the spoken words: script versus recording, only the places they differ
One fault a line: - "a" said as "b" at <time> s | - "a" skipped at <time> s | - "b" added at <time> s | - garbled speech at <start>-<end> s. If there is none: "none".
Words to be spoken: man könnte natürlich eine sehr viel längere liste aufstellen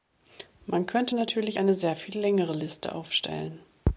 none